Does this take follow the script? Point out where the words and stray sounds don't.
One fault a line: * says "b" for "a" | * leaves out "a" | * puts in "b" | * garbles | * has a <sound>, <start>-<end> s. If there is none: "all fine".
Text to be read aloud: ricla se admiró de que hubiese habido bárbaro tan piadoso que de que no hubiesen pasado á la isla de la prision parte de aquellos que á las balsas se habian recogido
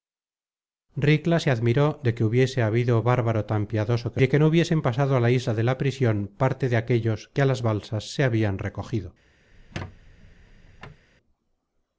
* has a squeak, 9.5-11.1 s